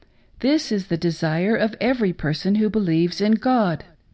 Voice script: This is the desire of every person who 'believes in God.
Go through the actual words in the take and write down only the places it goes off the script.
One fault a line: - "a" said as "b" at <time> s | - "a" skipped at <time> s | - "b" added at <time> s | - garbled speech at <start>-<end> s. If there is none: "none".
none